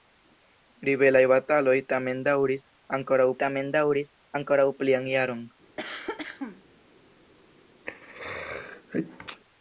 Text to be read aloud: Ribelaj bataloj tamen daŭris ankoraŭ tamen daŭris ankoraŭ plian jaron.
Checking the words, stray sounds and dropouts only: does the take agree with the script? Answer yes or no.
no